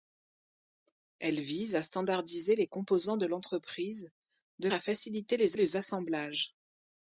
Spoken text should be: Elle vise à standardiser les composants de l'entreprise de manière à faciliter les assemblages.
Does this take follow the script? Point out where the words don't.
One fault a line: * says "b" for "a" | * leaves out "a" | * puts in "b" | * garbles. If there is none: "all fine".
* leaves out "manière"
* puts in "les"